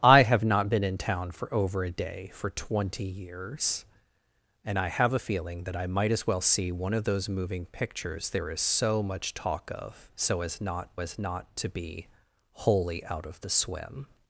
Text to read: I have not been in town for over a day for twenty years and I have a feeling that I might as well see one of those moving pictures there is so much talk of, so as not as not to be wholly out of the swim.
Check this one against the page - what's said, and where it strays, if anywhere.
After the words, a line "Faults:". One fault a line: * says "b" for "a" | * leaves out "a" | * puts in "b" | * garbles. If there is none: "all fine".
I have not been in town for over a day for twenty years and I have a feeling that I might as well see one of those moving pictures there is so much talk of, so as not as not to be wholly out of the swim.
Faults:
all fine